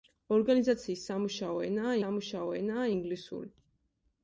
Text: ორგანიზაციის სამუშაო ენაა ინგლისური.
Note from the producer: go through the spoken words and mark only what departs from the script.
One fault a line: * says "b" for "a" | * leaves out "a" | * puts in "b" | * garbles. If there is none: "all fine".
* puts in "სამუშაო ენაა"